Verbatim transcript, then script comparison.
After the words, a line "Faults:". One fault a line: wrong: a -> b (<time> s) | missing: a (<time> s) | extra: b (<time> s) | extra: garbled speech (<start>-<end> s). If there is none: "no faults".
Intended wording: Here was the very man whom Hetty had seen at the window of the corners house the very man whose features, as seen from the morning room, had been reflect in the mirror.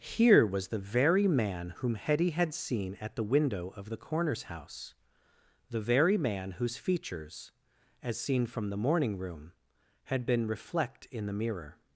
Here was the very man whom Hetty had seen at the window of the corners house the very man whose features, as seen from the morning room, had been reflect in the mirror.
Faults:
no faults